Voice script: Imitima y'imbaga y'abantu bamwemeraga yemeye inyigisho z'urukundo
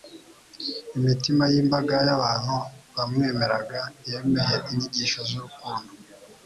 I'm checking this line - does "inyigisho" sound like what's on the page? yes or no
yes